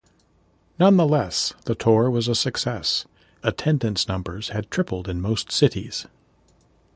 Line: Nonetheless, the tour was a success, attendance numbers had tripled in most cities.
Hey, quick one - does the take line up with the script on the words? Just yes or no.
yes